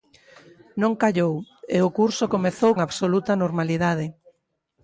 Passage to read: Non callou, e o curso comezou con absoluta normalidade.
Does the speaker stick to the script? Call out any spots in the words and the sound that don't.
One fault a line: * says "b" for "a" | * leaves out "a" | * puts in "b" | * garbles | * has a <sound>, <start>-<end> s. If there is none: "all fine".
* leaves out "con"